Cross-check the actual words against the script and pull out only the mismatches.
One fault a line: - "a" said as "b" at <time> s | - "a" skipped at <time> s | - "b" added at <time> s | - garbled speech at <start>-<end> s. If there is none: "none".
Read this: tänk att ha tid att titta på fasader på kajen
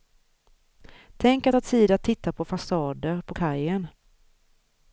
none